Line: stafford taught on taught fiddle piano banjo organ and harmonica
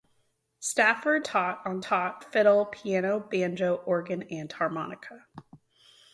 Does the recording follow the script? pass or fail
pass